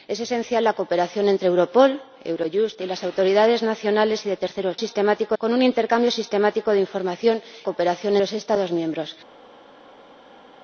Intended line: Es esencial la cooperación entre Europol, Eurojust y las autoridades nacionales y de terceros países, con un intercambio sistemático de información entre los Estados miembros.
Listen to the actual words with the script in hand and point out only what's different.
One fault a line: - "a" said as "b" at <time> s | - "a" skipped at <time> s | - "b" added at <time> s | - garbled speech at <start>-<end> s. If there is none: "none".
- "países" said as "sistemático" at 4.8 s
- "entre" said as "cooperación" at 7.6 s